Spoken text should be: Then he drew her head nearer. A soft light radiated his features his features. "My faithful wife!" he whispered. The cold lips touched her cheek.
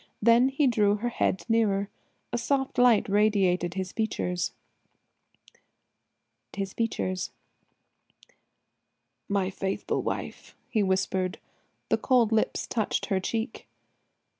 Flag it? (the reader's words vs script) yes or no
no